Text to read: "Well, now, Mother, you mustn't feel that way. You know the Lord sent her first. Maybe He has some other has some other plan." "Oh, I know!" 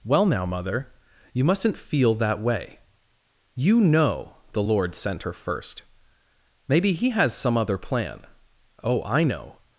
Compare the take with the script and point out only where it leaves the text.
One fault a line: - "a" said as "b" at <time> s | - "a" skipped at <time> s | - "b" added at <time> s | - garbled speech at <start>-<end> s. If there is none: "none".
- "has some other" skipped at 7.8 s